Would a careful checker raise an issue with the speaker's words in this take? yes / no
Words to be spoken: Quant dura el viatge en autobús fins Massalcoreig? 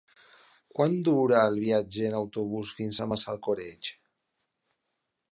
yes